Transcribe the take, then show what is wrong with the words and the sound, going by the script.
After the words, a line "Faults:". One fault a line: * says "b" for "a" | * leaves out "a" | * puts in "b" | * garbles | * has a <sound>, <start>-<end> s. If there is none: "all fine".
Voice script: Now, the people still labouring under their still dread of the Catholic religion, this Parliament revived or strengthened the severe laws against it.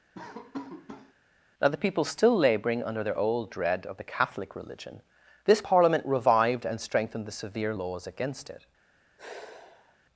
Now, the people still labouring under their old dread of the Catholic religion, this Parliament revived and strengthened the severe laws against it.
Faults:
* has a laugh, 0.1-1.1 s
* says "old" for "still"
* says "and" for "or"
* has a sigh, 9.2-10.0 s